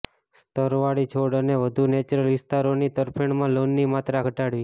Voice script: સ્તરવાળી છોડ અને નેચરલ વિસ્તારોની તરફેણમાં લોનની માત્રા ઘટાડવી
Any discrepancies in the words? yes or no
yes